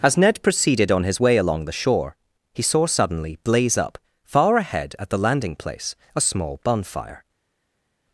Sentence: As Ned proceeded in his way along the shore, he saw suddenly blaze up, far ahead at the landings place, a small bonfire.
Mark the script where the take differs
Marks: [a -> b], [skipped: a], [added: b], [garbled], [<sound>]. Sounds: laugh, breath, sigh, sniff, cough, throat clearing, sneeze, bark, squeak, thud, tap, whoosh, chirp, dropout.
As Ned proceeded [in -> on] his way along the shore, he saw suddenly blaze up, far ahead at the [landings -> landing] place, a small bonfire.